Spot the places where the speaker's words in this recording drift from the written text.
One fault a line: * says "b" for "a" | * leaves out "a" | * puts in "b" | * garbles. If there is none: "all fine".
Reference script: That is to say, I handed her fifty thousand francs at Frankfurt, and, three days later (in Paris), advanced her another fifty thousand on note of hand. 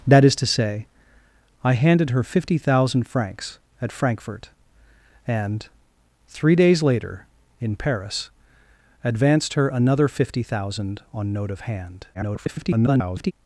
* garbles